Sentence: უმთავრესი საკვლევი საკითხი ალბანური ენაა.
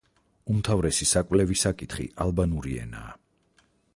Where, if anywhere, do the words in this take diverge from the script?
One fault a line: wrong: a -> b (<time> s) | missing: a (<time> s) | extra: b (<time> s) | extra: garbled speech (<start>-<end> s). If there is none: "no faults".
no faults